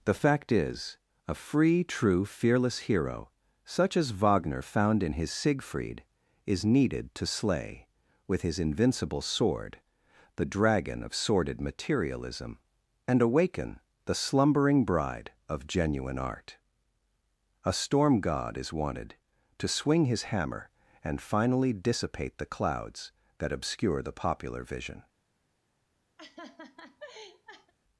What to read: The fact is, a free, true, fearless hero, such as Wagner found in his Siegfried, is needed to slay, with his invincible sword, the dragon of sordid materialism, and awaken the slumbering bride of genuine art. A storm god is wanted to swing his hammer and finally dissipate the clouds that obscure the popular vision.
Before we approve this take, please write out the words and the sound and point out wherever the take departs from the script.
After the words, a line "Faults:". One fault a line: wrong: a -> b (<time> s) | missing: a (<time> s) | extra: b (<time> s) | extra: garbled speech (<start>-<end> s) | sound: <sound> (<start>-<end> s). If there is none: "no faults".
The fact is, a free, true, fearless hero, such as Wagner found in his Siegfried, is needed to slay, with his invincible sword, the dragon of sordid materialism, and awaken the slumbering bride of genuine art. A storm god is wanted to swing his hammer and finally dissipate the clouds that obscure the popular vision.
Faults:
sound: laugh (26.2-27.7 s)